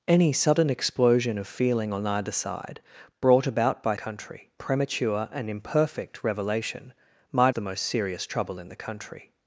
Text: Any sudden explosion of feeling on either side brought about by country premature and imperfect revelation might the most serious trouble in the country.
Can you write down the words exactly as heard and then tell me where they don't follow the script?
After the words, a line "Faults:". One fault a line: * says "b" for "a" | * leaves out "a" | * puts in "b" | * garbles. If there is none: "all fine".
Any sudden explosion of feeling on either side brought about by country premature and imperfect revelation might the most serious trouble in the country.
Faults:
all fine